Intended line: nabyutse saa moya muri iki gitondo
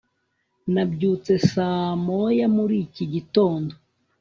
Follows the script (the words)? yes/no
yes